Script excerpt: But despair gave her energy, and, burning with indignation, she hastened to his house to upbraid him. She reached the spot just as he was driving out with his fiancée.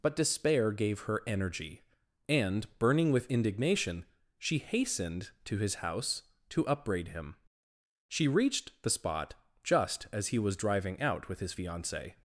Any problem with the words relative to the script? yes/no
no